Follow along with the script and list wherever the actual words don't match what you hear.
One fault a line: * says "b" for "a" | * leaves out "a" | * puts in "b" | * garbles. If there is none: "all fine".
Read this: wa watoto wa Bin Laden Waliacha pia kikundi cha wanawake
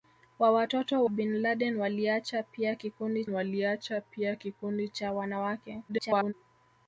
* leaves out "wa"
* puts in "Waliacha pia kikundi"
* garbles